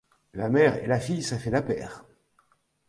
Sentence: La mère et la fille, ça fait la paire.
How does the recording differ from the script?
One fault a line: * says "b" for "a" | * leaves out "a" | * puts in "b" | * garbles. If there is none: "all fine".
all fine